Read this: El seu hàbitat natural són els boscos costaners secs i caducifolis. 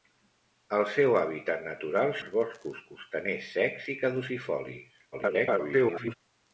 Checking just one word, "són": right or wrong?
wrong